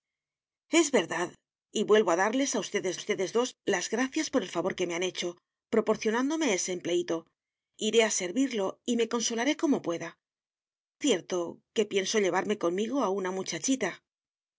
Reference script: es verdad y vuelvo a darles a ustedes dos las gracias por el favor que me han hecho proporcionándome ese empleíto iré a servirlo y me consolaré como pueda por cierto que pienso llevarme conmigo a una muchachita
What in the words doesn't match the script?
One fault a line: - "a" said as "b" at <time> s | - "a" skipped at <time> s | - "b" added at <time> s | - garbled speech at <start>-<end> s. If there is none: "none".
- "ustedes" added at 2.9 s
- "por" skipped at 10.2 s